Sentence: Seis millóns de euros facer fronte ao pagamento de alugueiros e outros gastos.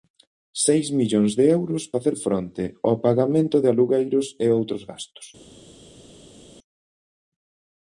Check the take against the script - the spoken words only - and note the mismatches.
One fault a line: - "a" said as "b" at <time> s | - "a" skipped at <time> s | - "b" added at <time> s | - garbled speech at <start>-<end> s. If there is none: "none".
none